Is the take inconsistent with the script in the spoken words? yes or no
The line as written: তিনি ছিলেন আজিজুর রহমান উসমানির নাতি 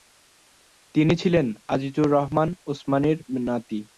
no